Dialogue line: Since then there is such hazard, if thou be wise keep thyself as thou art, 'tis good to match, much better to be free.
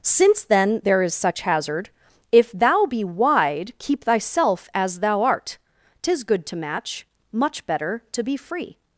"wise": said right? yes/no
no